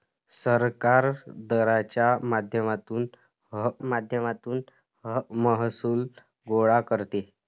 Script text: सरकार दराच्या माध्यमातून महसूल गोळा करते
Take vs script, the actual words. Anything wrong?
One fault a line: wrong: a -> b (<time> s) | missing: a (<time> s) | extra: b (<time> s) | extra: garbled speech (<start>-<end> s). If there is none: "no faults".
extra: माध्यमातून (3.8 s)